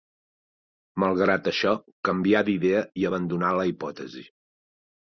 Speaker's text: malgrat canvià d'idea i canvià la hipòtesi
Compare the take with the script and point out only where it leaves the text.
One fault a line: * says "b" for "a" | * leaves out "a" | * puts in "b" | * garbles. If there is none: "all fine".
* puts in "això"
* says "abandonà" for "canvià"